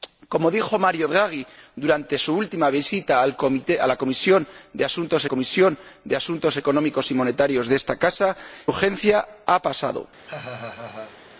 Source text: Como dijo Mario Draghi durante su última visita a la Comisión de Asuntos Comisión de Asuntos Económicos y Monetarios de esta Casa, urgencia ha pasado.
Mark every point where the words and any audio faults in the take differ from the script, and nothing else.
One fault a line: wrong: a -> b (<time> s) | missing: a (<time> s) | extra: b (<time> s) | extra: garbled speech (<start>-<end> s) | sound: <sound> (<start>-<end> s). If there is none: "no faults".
sound: laugh (10.3-11.2 s)